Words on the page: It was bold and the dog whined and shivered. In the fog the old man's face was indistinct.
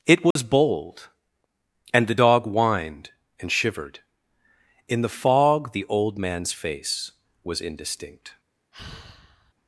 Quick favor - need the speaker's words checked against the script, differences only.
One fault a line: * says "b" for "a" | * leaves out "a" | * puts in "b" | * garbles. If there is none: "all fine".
all fine